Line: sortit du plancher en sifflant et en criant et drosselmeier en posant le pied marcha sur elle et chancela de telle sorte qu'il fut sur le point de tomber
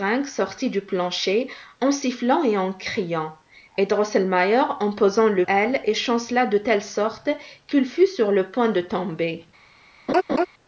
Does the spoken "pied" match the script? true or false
false